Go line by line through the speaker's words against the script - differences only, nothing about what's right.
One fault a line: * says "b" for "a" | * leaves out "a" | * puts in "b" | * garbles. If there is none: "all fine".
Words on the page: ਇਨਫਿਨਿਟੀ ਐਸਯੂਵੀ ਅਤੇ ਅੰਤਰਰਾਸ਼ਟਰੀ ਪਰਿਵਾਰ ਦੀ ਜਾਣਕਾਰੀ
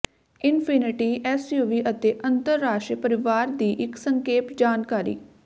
* puts in "ਇੱਕ ਸੰਖੇਪ"